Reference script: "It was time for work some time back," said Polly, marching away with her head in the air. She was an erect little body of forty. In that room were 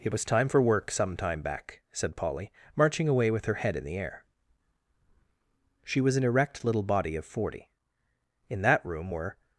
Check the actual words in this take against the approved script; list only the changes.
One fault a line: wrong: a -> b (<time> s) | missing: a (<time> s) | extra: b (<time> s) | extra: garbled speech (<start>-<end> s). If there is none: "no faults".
no faults